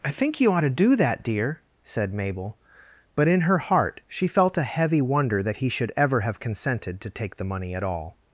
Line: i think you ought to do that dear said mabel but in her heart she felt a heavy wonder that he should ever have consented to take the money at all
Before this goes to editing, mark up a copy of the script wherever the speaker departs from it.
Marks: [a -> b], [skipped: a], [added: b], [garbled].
i think you ought to do that dear said mabel but in her heart she felt a heavy wonder that he should ever have consented to take the money at all